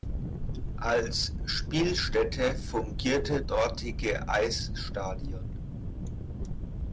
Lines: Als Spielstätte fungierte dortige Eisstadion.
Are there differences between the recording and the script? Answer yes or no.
no